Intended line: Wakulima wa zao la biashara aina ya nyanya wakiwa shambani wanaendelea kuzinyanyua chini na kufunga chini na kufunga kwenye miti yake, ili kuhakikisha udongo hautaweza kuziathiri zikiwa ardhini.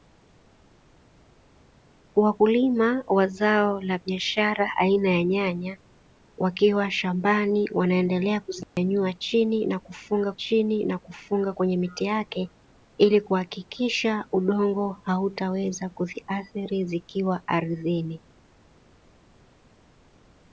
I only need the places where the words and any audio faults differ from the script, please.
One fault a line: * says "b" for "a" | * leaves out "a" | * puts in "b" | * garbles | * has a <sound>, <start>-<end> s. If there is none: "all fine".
* has a dropout, 8.6-8.8 s